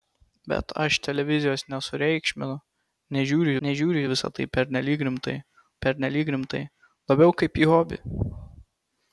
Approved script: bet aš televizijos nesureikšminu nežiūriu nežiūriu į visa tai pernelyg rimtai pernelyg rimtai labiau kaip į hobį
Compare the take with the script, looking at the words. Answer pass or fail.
pass